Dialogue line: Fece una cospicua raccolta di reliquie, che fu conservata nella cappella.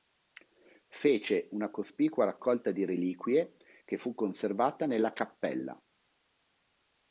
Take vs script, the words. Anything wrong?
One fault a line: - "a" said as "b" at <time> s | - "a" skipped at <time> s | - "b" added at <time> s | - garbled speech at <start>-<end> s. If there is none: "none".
none